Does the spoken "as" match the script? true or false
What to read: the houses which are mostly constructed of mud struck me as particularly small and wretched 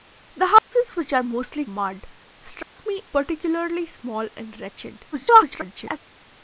false